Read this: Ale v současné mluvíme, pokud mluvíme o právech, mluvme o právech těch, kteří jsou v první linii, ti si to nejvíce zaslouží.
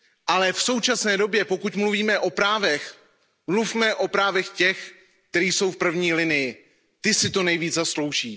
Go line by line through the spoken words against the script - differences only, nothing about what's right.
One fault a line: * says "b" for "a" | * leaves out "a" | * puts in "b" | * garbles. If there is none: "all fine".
* says "době" for "mluvíme"